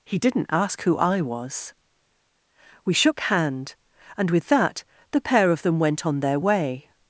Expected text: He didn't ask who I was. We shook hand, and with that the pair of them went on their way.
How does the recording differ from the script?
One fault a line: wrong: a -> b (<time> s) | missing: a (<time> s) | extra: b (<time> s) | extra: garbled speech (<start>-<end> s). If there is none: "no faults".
no faults